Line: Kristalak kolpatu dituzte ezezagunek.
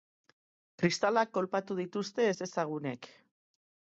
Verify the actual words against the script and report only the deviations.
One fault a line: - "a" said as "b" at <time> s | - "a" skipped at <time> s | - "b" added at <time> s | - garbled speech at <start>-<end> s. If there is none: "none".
none